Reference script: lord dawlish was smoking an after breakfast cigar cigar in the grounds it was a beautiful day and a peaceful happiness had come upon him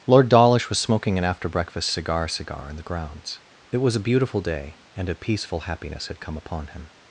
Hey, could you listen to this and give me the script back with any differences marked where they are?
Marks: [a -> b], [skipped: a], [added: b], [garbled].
lord dawlish was smoking an after breakfast cigar cigar in the grounds it was a beautiful day and a peaceful happiness had come upon him